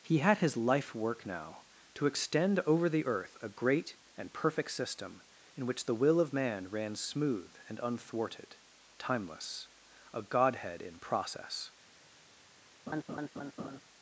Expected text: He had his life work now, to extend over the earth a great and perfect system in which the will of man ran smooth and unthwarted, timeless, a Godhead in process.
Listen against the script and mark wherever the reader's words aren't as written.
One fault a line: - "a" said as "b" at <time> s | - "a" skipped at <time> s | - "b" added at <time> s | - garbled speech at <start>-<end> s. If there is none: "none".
none